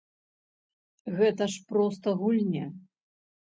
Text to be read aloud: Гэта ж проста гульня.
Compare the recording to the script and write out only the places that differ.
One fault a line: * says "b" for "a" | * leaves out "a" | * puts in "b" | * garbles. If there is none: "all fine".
all fine